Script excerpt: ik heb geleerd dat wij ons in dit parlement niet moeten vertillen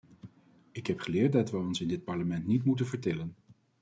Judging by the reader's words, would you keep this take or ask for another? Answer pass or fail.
pass